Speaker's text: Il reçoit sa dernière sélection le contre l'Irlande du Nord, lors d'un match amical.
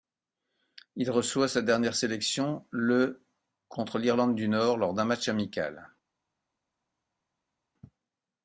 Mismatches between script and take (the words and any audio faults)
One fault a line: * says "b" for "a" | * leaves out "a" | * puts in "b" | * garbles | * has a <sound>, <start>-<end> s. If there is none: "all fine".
all fine